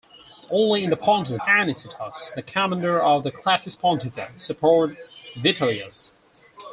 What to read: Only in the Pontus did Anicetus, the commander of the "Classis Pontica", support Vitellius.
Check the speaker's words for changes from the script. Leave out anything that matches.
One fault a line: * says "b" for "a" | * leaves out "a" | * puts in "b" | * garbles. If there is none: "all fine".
* leaves out "did"